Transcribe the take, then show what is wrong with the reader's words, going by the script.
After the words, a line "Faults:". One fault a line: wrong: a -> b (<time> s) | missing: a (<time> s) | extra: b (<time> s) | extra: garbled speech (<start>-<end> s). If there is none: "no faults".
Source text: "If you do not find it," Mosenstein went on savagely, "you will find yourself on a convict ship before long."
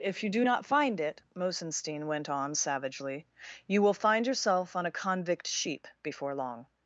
"If you do not find it," Mosenstein went on savagely, "you will find yourself on a convict sheep before long."
Faults:
wrong: ship -> sheep (5.5 s)